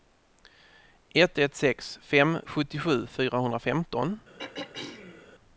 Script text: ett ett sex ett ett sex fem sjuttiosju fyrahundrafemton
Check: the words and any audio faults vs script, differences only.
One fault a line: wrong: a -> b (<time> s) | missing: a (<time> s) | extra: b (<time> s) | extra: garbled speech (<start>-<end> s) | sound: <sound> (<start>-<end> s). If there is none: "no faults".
missing: ett ett sex (2.0 s)
sound: throat clearing (4.4-5.3 s)